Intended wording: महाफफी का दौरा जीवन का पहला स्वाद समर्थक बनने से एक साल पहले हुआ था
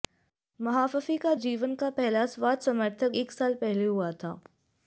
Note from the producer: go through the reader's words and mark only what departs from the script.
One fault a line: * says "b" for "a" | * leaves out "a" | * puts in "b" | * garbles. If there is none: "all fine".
* leaves out "दौरा"
* leaves out "बनने से"